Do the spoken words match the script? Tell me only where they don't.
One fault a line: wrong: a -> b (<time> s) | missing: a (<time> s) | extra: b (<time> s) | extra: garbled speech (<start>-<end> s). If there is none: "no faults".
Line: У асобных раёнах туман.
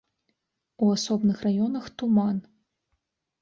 no faults